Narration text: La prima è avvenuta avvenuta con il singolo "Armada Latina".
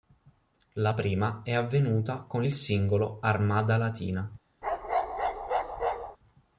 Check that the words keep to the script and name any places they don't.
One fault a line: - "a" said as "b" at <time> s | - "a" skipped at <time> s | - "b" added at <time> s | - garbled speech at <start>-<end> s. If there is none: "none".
- "avvenuta" skipped at 2.2 s